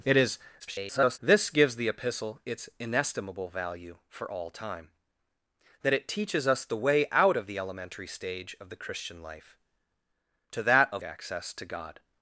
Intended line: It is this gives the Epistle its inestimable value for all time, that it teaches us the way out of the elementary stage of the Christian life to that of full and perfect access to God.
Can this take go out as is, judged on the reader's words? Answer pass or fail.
fail